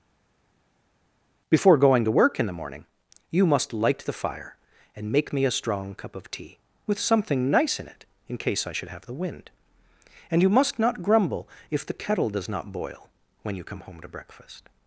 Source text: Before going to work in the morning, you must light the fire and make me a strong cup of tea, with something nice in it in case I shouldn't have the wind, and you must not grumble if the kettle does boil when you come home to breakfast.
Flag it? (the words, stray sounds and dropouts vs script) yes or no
yes